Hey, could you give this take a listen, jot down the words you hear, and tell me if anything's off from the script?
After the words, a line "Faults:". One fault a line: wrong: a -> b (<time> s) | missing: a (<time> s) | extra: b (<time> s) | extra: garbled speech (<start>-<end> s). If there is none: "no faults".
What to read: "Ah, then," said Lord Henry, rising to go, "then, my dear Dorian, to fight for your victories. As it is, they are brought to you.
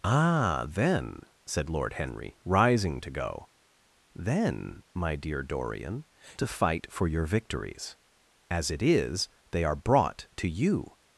"Ah, then," said Lord Henry, rising to go, "then, my dear Dorian, to fight for your victories. As it is, they are brought to you.
Faults:
no faults